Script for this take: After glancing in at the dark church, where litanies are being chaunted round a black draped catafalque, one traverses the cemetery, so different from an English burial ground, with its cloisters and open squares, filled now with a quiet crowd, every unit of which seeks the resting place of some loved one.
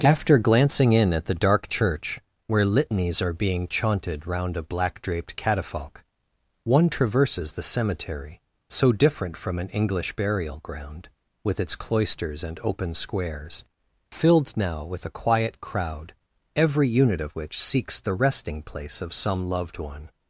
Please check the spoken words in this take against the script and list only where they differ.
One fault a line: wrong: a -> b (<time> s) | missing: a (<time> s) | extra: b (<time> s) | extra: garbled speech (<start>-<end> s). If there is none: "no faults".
no faults